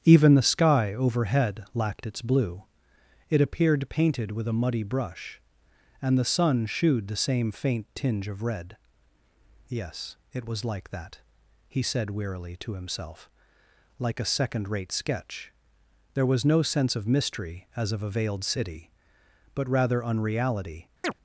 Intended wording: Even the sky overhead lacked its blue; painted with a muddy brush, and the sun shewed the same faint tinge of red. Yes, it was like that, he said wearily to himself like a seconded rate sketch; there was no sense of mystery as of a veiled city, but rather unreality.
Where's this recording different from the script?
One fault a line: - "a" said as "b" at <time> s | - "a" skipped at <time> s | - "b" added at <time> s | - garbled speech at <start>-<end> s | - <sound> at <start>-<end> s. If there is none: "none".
- "it appeared" added at 3.3 s
- "seconded" said as "second" at 14.2 s
- chirp at 21.0-21.1 s